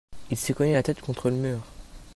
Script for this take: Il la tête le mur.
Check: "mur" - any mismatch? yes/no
no